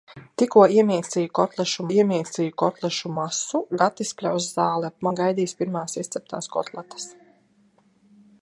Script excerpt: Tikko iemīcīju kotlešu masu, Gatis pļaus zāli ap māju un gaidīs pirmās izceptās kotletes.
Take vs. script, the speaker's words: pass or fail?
fail